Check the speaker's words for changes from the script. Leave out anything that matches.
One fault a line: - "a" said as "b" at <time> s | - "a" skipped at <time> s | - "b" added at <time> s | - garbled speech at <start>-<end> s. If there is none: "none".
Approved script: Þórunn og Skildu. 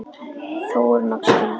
none